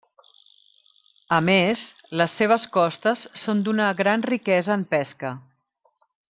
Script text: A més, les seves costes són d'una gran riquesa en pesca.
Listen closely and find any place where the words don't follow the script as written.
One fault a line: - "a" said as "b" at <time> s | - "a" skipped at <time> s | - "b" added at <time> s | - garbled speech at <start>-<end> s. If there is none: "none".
none